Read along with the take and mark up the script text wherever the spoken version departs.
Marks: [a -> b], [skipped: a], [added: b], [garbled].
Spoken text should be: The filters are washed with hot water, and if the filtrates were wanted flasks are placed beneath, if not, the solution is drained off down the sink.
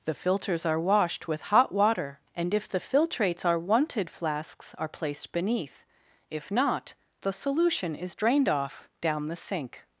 The filters are washed with hot water, and if the filtrates [were -> are] wanted flasks are placed beneath, if not, the solution is drained off down the sink.